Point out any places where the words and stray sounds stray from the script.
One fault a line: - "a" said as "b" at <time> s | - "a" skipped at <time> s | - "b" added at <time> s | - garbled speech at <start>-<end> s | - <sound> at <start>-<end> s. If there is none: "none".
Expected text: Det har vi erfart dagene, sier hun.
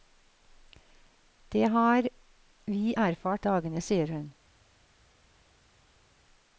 none